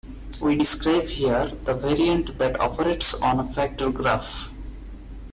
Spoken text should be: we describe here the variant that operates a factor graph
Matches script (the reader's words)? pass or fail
fail